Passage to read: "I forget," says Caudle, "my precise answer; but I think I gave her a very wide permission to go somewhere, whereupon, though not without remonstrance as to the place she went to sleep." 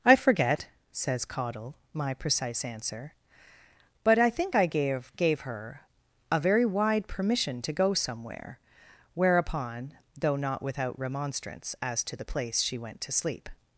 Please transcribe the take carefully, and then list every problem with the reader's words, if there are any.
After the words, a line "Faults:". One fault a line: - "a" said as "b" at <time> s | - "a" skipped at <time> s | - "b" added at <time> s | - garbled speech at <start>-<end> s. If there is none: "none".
"I forget," says Caudle, "my precise answer; but I think I gave gave her a very wide permission to go somewhere, whereupon, though not without remonstrance as to the place she went to sleep."
Faults:
- "gave" added at 5.2 s